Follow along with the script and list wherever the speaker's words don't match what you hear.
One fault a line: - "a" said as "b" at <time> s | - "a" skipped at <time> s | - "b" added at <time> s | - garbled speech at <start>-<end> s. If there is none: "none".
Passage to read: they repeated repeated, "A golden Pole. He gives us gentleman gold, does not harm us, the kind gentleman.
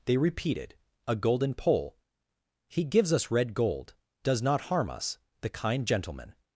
- "repeated" skipped at 0.8 s
- "gentleman" said as "red" at 3.3 s